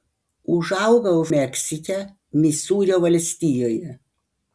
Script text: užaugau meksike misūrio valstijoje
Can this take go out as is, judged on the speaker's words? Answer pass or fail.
pass